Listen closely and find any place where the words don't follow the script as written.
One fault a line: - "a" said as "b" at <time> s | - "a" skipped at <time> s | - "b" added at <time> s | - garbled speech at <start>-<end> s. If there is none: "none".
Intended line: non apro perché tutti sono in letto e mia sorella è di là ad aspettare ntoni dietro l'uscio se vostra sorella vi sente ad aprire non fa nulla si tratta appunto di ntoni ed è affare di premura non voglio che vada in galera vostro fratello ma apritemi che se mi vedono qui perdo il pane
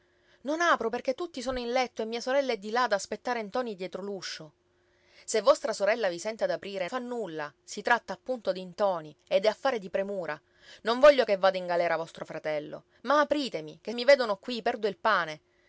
- "non" skipped at 6.9 s
- "se" skipped at 13.9 s